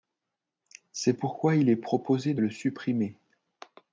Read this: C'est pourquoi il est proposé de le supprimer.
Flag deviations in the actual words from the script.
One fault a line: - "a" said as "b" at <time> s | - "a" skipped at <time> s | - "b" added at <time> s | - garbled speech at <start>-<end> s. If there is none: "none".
none